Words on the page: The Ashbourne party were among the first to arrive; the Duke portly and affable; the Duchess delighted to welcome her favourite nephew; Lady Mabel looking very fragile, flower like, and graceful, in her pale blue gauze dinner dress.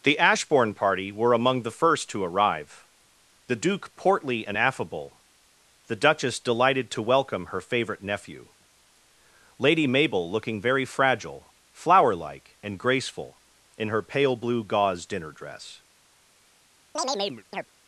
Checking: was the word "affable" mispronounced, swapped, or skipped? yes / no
no